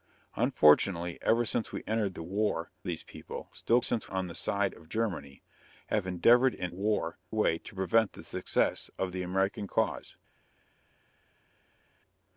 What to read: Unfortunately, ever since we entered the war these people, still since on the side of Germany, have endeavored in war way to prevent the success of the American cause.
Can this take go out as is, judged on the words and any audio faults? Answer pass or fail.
pass